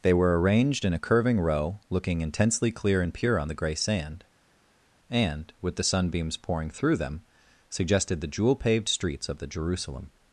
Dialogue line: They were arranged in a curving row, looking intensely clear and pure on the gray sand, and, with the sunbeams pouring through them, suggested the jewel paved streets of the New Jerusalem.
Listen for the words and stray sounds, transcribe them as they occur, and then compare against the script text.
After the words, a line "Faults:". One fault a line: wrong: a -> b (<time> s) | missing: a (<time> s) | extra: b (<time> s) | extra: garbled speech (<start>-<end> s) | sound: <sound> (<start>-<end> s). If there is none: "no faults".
They were arranged in a curving row, looking intensely clear and pure on the gray sand, and, with the sunbeams pouring through them, suggested the jewel paved streets of the Jerusalem.
Faults:
missing: New (9.5 s)